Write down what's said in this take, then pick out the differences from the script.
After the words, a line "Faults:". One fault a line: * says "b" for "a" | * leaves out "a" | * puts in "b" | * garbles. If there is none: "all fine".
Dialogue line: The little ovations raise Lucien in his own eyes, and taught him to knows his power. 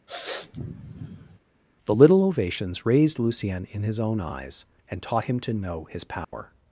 The little ovations raised Lucien in his own eyes, and taught him to know his power.
Faults:
* says "raised" for "raise"
* says "know" for "knows"